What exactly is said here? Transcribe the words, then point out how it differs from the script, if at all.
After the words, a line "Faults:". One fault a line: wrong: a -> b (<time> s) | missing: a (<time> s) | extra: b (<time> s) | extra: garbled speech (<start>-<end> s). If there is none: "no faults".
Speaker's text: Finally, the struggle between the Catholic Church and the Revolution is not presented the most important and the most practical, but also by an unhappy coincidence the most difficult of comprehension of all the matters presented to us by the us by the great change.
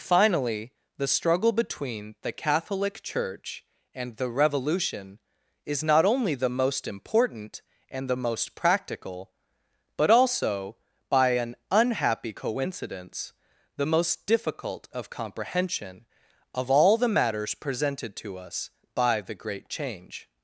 Finally, the struggle between the Catholic Church and the Revolution is not only the most important and the most practical, but also by an unhappy coincidence the most difficult of comprehension of all the matters presented to us by the great change.
Faults:
wrong: presented -> only (6.0 s)
missing: us by the (19.3 s)